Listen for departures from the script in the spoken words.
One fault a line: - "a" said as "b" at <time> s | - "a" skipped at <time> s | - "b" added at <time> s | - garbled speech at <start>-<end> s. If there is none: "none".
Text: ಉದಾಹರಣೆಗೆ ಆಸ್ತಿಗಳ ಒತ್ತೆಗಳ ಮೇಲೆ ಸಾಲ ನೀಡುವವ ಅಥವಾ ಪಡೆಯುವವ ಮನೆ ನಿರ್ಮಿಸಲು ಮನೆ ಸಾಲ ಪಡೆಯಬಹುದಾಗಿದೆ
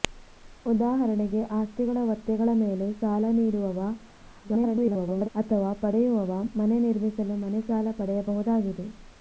- garbled speech at 4.4-5.3 s